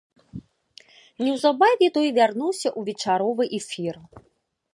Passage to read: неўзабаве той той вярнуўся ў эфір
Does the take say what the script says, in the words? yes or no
no